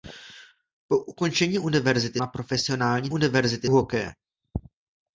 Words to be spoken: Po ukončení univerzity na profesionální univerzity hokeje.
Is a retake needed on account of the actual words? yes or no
no